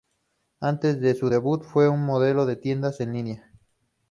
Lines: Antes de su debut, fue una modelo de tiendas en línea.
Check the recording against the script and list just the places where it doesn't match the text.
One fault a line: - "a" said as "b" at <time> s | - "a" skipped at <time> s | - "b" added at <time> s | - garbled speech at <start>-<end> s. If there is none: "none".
none